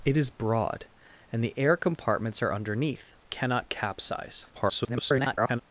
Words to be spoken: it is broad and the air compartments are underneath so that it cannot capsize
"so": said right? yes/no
no